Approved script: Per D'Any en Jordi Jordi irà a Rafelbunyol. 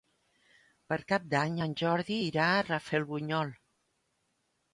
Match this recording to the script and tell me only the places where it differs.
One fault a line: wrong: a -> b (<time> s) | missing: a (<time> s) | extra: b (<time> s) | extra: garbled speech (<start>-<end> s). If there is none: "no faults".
extra: Cap (1.1 s)
missing: Jordi (2.2 s)